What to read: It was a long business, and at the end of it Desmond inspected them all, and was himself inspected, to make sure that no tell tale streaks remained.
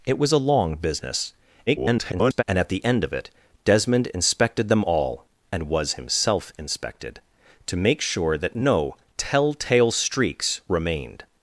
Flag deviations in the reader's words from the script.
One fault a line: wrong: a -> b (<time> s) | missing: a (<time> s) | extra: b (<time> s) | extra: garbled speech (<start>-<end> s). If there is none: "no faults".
extra: garbled speech (1.7-2.4 s)